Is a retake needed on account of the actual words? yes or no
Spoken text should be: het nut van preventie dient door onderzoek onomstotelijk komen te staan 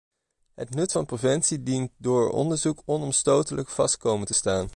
yes